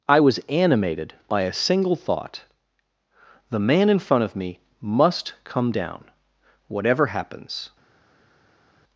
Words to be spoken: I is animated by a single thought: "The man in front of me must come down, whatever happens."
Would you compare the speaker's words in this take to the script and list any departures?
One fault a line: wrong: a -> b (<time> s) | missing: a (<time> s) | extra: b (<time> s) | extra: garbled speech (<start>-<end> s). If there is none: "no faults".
wrong: is -> was (0.2 s)